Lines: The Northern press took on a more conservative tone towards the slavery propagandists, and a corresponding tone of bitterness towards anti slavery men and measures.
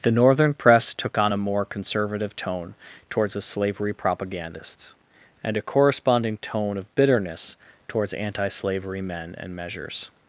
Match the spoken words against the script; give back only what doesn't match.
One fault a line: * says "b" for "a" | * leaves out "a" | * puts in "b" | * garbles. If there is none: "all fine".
all fine